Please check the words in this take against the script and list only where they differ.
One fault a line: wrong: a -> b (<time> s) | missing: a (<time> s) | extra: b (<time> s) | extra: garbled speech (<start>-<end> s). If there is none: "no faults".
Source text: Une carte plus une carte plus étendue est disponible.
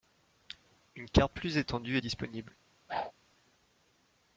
missing: une carte plus (1.6 s)